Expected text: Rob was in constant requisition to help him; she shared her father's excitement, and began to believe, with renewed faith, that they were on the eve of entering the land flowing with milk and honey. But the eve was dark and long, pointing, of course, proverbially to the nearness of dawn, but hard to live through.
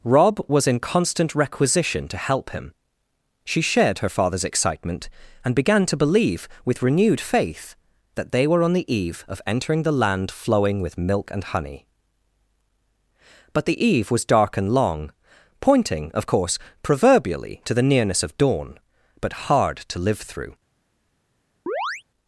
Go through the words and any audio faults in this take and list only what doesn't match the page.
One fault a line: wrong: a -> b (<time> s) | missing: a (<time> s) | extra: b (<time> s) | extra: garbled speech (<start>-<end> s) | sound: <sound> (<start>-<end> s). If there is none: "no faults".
sound: chirp (21.7-22.0 s)